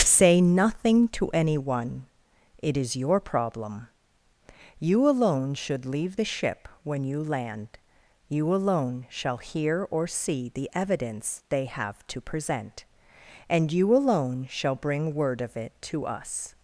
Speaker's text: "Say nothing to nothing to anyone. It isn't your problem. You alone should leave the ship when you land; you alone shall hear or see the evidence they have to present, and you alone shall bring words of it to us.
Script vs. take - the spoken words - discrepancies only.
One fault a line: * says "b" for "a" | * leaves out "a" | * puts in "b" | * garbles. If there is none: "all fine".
* leaves out "nothing to"
* says "is" for "isn't"
* says "word" for "words"